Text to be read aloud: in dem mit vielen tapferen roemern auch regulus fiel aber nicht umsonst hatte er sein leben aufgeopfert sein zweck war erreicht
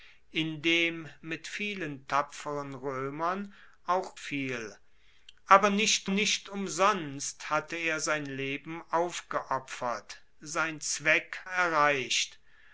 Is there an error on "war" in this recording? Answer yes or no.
yes